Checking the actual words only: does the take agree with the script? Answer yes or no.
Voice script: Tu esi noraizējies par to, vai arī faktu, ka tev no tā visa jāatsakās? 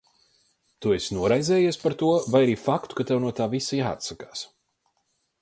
yes